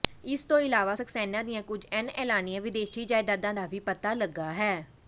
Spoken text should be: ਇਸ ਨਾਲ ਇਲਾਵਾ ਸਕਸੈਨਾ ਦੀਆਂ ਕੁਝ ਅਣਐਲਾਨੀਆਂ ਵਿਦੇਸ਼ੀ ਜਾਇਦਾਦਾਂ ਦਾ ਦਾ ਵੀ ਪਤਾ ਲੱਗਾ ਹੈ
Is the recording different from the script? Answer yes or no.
yes